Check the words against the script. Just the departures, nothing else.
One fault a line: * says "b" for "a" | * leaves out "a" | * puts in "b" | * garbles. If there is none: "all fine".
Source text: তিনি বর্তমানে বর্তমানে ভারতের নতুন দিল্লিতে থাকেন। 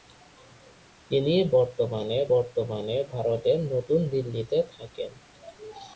all fine